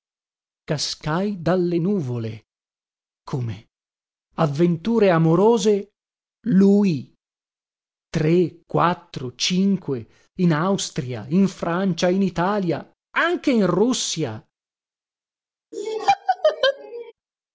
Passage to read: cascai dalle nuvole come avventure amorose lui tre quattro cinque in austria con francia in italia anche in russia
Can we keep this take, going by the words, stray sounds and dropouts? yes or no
no